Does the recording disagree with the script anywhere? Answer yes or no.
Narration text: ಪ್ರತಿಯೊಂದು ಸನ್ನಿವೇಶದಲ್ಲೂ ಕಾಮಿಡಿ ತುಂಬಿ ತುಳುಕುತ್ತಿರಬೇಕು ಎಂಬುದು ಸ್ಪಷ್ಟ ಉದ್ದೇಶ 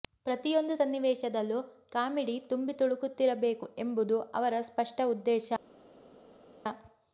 yes